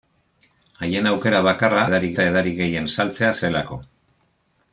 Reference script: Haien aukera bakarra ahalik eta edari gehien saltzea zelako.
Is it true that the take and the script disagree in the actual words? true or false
true